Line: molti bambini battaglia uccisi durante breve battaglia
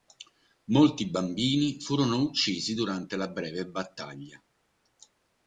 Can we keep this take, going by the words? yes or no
no